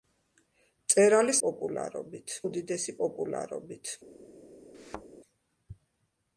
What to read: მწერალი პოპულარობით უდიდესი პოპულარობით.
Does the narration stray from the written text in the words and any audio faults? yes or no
yes